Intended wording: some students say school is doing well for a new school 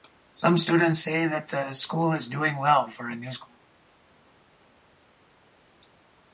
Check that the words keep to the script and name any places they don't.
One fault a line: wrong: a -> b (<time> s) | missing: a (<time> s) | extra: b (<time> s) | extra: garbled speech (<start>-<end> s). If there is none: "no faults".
extra: that the (1.3 s)